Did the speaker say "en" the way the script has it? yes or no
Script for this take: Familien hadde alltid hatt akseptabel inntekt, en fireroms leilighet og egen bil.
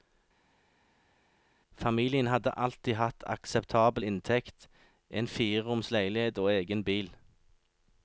yes